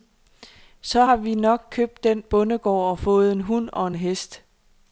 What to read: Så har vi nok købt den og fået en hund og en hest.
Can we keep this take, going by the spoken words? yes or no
no